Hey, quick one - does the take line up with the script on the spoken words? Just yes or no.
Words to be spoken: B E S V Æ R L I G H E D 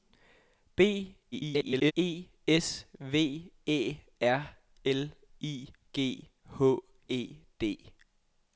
no